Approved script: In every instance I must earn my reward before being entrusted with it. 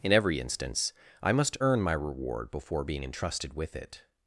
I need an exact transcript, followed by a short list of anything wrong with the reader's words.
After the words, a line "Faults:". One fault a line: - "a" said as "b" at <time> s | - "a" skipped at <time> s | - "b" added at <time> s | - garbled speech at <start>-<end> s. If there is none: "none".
In every instance I must earn my reward before being entrusted with it.
Faults:
none